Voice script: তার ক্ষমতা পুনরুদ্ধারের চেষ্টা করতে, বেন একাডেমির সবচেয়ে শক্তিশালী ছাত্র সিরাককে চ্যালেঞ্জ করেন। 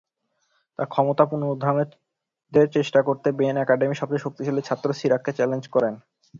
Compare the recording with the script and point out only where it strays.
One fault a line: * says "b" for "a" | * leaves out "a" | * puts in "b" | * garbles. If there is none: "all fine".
all fine